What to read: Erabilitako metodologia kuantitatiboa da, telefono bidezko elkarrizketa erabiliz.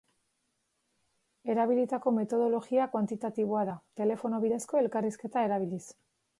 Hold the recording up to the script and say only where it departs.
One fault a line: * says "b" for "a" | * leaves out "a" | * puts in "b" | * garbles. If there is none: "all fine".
all fine